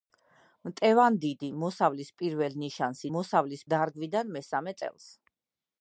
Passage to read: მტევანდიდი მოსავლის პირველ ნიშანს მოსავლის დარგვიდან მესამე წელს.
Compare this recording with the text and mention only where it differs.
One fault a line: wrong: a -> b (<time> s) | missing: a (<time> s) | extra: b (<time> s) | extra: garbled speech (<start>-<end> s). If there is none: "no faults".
no faults